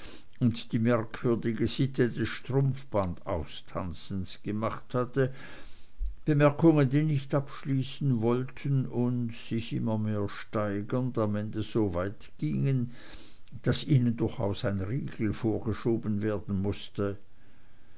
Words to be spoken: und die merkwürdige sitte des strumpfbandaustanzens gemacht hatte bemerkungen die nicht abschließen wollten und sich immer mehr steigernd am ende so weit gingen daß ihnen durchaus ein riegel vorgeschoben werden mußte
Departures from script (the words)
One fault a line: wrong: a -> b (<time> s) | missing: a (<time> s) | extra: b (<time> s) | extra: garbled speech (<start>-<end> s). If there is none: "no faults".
no faults